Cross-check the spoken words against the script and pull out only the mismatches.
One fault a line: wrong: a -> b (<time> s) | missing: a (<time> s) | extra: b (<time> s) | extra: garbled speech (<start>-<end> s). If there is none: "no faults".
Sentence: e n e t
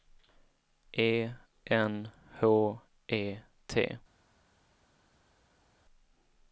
extra: h (2.4 s)